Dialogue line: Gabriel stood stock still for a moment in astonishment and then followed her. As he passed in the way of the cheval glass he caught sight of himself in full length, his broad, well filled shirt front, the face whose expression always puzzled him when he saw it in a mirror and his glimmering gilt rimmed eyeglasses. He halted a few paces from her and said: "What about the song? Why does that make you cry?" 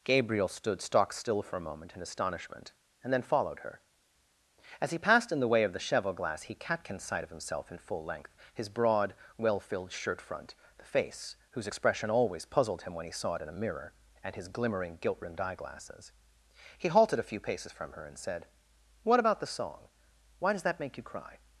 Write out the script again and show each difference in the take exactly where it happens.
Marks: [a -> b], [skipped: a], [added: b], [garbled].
Gabriel stood stock still for a moment in astonishment and then followed her. As he passed in the way of the cheval glass he [caught -> catkin] sight of himself in full length, his broad, well filled shirt front, the face whose expression always puzzled him when he saw it in a mirror and his glimmering gilt rimmed eyeglasses. He halted a few paces from her and said: "What about the song? Why does that make you cry?"